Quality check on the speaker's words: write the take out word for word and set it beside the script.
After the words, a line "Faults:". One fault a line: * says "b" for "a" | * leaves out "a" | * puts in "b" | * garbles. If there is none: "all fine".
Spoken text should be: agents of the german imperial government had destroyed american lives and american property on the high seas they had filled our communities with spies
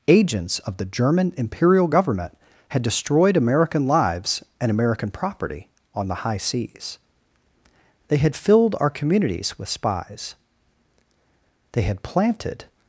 agents of the german imperial government had destroyed american lives and american property on the high seas they had filled our communities with spies they had planted
Faults:
* puts in "they had planted"